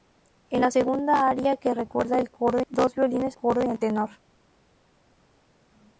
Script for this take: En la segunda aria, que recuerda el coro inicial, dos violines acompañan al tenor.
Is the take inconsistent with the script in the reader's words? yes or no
yes